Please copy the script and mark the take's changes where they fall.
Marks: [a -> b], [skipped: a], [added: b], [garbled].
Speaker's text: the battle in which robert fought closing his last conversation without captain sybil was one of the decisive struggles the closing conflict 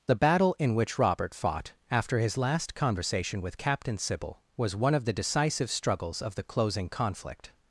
the battle in which robert fought [closing -> after] his last conversation [without -> with] captain sybil was one of the decisive struggles [added: of] the closing conflict